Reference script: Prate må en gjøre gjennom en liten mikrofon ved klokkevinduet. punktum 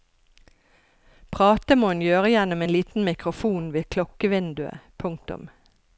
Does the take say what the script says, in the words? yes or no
yes